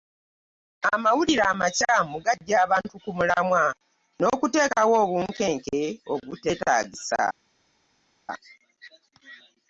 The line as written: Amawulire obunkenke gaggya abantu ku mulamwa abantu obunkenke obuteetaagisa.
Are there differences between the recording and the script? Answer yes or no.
yes